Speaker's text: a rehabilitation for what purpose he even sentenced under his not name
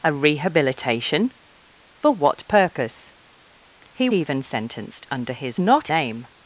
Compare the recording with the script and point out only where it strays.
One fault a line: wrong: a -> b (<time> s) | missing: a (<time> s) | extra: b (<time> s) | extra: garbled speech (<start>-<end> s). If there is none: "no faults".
no faults